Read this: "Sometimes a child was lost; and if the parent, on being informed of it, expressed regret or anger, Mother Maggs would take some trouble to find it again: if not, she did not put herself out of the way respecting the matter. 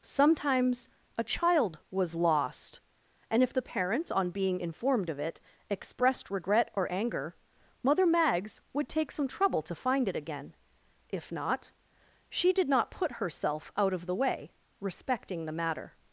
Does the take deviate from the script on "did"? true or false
false